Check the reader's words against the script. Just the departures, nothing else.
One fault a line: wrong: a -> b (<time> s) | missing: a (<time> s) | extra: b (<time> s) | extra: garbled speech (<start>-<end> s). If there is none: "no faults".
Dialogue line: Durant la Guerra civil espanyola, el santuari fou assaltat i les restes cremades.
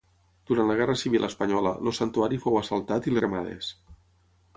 missing: les restes (3.1 s)